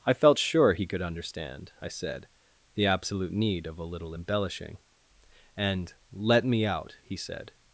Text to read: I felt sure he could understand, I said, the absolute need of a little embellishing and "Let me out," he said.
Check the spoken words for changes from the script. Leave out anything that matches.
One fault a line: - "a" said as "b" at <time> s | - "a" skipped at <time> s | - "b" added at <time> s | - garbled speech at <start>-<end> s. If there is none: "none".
none